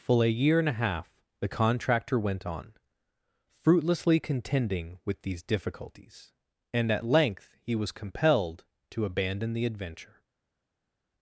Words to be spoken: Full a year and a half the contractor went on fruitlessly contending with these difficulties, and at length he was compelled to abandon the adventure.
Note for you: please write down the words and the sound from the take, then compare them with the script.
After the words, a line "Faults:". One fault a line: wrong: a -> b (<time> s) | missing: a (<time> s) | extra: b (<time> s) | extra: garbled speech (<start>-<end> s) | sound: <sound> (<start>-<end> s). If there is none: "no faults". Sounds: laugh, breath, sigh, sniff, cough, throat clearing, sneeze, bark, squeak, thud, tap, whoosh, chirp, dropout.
Full a year and a half the contractor went on fruitlessly contending with these difficulties, and at length he was compelled to abandon the adventure.
Faults:
no faults